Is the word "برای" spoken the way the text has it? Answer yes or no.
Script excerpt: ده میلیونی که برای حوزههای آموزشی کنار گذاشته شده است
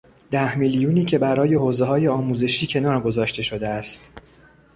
yes